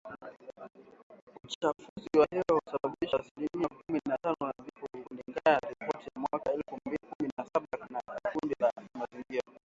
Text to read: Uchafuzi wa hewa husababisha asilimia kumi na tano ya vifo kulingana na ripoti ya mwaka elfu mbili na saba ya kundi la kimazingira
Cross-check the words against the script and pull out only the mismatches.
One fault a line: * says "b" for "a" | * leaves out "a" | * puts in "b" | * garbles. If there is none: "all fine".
* puts in "kumi"